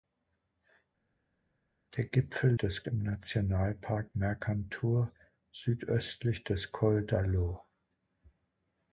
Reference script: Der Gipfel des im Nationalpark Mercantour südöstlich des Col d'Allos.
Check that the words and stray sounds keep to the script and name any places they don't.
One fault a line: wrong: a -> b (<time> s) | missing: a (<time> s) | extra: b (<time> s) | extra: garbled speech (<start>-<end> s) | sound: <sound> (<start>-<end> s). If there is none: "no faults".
no faults